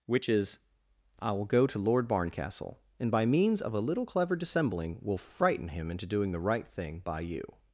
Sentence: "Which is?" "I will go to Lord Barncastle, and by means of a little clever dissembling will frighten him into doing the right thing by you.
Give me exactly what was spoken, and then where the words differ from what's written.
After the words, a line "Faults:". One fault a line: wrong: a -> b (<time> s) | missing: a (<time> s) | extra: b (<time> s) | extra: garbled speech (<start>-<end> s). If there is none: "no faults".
"Which is?" "I will go to Lord Barncastle, and by means of a little clever dissembling will frighten him into doing the right thing by you.
Faults:
no faults